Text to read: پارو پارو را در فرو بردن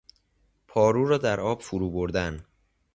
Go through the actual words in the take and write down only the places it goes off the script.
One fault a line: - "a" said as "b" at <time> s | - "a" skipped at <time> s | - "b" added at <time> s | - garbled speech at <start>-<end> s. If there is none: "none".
- "پارو" skipped at 1.1 s
- "آب" added at 1.4 s